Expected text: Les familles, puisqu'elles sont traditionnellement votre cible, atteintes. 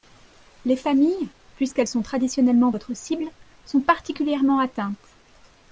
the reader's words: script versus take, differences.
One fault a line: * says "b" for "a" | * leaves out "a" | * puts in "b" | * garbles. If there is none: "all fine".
* puts in "sont particulièrement"